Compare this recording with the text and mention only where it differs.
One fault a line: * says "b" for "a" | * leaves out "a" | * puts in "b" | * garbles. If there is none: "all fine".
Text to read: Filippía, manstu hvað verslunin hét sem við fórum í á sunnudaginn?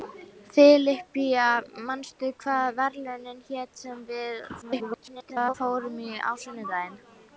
* garbles